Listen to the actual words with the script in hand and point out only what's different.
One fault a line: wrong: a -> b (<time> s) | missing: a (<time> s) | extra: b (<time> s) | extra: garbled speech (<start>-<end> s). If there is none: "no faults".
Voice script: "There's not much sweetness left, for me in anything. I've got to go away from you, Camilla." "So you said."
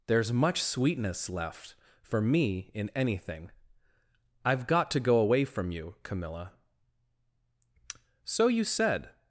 missing: not (0.3 s)